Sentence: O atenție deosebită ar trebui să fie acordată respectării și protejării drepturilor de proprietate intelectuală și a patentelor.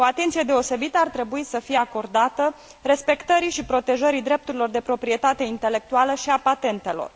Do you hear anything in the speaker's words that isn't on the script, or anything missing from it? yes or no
no